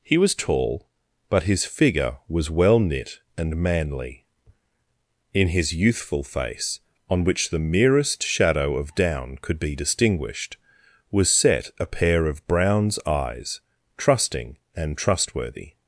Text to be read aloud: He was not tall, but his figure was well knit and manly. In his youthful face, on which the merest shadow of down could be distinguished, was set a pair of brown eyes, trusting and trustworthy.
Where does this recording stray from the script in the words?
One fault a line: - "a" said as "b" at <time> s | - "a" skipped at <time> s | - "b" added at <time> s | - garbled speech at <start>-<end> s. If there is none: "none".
- "not" skipped at 0.3 s
- "brown" said as "browns" at 12.5 s